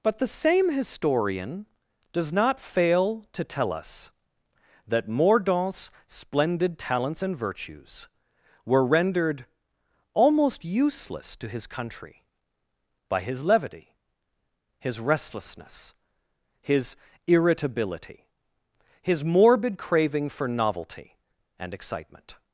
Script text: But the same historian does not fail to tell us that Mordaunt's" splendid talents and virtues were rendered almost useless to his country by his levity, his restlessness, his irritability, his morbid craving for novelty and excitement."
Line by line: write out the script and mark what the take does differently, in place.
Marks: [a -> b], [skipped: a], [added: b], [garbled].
But the same historian does not fail to tell us that Mordaunt's" splendid talents and virtues were rendered almost useless to his country by his levity, his restlessness, his irritability, his morbid craving for novelty and excitement."